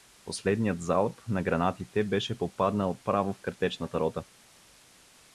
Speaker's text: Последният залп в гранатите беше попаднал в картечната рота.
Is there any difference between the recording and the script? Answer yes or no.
yes